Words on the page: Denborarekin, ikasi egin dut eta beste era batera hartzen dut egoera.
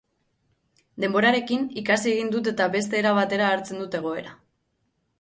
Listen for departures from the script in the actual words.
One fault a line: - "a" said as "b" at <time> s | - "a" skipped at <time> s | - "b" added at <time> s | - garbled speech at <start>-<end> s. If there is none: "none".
none